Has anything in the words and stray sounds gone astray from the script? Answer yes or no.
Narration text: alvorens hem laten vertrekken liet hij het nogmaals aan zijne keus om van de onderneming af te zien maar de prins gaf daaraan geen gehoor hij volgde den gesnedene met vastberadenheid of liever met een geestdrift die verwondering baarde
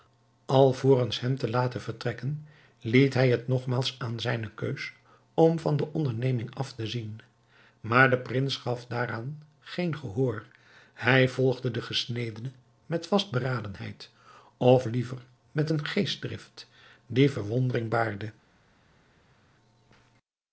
yes